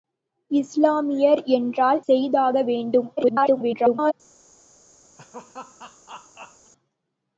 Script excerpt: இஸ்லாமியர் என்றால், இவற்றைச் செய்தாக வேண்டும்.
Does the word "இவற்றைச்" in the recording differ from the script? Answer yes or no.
yes